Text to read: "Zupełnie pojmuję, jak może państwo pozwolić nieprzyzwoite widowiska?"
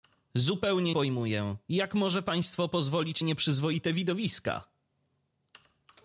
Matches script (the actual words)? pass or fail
pass